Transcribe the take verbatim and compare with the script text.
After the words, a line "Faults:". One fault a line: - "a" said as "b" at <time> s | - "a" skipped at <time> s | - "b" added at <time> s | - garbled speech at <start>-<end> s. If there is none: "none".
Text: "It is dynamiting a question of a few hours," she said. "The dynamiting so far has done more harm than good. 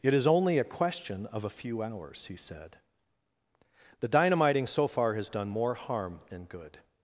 "It is only a question of a few hours," he said. "The dynamiting so far has done more harm than good.
Faults:
- "dynamiting" said as "only" at 0.2 s
- "she" said as "he" at 2.2 s